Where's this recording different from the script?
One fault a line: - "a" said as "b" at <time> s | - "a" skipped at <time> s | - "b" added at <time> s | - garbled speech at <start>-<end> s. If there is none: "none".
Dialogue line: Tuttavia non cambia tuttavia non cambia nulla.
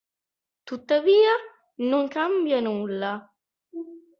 - "tuttavia non cambia" skipped at 2.6 s